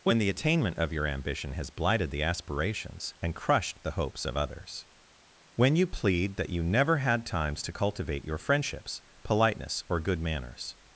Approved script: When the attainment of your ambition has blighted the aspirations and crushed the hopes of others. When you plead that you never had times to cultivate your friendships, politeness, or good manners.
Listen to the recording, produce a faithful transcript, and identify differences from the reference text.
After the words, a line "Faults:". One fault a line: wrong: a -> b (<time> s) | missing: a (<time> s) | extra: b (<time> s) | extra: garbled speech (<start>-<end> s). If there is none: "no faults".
When the attainment of your ambition has blighted the aspirations and crushed the hopes of others. When you plead that you never had times to cultivate your friendships, politeness, or good manners.
Faults:
no faults